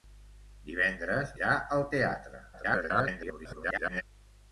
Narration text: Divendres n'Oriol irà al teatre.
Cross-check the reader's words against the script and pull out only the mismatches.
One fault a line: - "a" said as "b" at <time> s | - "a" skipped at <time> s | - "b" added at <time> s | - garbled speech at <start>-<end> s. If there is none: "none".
- "n'Oriol" skipped at 1.4 s
- garbled speech at 2.5-4.0 s